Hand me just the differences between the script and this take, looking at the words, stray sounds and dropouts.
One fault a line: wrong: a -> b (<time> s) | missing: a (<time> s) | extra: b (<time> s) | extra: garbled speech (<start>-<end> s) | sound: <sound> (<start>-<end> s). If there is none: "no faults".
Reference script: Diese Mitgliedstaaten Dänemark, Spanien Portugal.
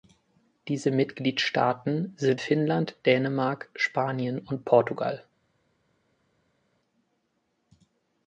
extra: sind Finnland (2.2 s)
extra: und (4.4 s)